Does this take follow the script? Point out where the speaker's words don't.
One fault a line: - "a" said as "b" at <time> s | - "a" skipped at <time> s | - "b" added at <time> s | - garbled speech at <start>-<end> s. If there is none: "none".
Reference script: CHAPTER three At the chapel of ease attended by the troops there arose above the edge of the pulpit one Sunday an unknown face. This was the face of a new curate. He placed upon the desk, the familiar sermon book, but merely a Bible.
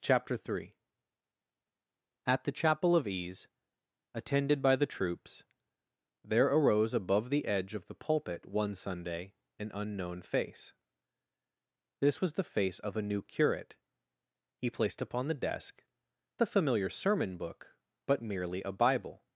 none